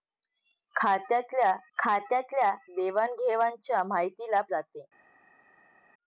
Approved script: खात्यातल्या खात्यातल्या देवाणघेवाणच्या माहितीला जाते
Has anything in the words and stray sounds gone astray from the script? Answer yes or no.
no